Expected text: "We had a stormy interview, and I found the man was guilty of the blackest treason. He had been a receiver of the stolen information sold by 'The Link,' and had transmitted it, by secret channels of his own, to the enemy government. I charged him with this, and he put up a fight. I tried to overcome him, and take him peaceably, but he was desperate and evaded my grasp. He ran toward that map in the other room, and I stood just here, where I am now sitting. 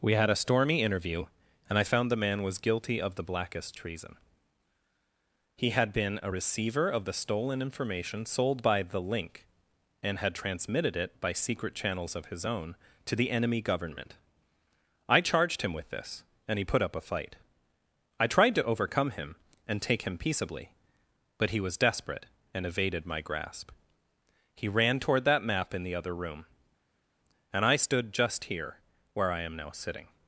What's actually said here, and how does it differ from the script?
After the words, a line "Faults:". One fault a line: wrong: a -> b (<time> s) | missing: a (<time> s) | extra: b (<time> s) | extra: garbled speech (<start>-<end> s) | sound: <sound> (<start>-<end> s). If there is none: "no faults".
"We had a stormy interview, and I found the man was guilty of the blackest treason. He had been a receiver of the stolen information sold by 'The Link,' and had transmitted it, by secret channels of his own, to the enemy government. I charged him with this, and he put up a fight. I tried to overcome him, and take him peaceably, but he was desperate and evaded my grasp. He ran toward that map in the other room, and I stood just here, where I am now sitting.
Faults:
no faults